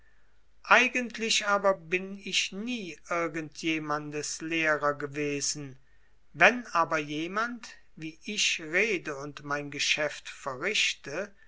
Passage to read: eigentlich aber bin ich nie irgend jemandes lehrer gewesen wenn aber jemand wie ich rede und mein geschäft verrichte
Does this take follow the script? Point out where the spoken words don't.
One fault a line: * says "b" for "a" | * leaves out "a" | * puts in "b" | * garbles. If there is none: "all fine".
all fine